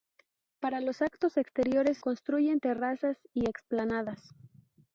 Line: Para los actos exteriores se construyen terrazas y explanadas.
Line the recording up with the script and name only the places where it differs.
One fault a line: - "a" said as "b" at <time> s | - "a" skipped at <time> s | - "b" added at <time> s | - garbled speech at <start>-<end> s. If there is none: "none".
- "se" skipped at 2.0 s